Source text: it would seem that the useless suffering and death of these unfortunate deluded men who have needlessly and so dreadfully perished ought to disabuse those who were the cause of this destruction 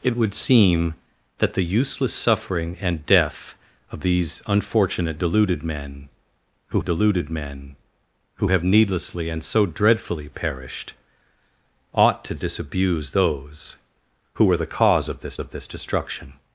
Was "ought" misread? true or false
false